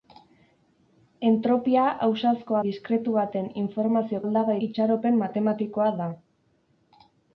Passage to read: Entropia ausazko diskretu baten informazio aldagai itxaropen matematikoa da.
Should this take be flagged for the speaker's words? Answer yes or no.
no